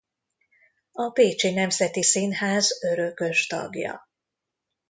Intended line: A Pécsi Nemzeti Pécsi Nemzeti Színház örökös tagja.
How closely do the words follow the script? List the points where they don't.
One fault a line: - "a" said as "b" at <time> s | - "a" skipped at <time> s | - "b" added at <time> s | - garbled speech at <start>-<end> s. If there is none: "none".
- "Pécsi Nemzeti" skipped at 2.0 s